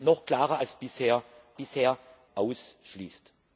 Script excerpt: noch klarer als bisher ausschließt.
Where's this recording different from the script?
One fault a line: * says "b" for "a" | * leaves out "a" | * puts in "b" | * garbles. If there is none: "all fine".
* puts in "bisher"